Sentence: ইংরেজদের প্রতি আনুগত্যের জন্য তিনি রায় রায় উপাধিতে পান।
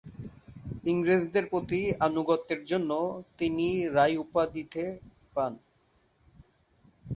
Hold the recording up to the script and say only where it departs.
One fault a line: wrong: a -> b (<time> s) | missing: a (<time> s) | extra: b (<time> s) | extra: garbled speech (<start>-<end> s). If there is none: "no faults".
missing: রায় (4.2 s)